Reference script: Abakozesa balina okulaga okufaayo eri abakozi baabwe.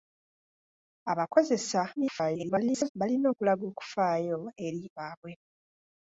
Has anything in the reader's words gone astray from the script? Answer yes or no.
yes